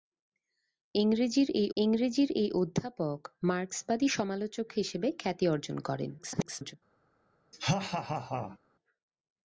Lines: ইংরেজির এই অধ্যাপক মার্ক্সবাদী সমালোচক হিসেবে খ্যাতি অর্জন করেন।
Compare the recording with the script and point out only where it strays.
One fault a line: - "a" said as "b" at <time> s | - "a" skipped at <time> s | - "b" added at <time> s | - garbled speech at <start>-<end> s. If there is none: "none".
- "ইংরেজির এই" added at 1.8 s
- garbled speech at 6.2-6.7 s